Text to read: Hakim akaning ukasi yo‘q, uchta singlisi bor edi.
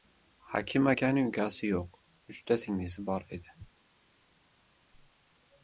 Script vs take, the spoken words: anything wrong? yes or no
no